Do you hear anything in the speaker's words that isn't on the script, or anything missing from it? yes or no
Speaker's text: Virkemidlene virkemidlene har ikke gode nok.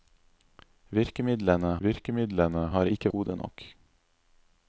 no